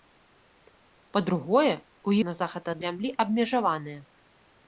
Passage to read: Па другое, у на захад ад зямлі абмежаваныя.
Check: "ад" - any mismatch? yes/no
no